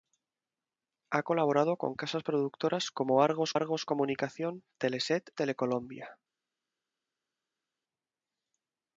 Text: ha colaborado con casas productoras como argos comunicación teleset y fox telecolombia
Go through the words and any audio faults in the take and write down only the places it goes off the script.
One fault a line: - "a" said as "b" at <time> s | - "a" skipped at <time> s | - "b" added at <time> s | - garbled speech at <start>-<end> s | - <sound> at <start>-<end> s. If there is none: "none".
- "argos" added at 3.5 s
- "y fox" skipped at 5.3 s